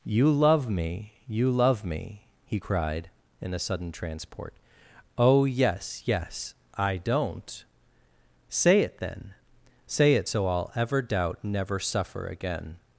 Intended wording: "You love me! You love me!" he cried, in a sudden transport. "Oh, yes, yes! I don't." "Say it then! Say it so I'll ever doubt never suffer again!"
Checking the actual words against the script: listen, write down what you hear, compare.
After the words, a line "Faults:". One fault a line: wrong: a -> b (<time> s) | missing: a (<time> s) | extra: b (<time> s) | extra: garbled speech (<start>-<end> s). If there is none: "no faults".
"You love me! You love me!" he cried, in a sudden transport. "Oh, yes, yes! I don't." "Say it then! Say it so I'll ever doubt never suffer again!"
Faults:
no faults